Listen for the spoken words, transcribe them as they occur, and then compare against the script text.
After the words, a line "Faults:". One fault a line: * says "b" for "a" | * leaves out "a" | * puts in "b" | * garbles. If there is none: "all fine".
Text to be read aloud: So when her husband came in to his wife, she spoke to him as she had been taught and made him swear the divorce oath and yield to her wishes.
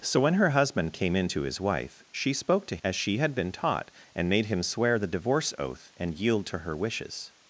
So when her husband came in to his wife, she spoke to as she had been taught and made him swear the divorce oath and yield to her wishes.
Faults:
* leaves out "him"